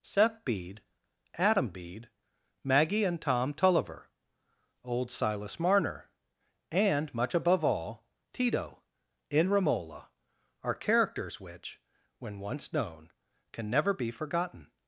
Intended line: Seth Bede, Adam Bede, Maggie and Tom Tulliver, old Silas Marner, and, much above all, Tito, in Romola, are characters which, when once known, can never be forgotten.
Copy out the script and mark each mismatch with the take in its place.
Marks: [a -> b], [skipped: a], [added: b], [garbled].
Seth Bede, Adam Bede, Maggie and Tom Tulliver, old Silas Marner, and, much above all, Tito, in Romola, are characters which, when once known, can never be forgotten.